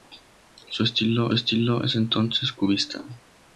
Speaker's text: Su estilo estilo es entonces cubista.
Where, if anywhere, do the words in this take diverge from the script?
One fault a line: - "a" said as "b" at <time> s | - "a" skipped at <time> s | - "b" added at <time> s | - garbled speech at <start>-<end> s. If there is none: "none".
none